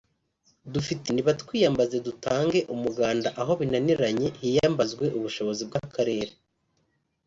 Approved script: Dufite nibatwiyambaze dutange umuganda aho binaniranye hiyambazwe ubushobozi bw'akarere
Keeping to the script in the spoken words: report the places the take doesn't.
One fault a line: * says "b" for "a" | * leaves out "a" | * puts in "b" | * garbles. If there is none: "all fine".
all fine